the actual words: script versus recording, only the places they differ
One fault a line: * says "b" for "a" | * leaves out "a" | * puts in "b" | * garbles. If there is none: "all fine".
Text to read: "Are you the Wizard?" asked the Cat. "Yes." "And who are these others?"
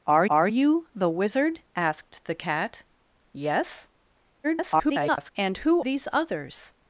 * puts in "are"
* garbles
* leaves out "are"